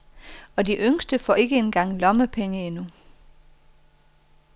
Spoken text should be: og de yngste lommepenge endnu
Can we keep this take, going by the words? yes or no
no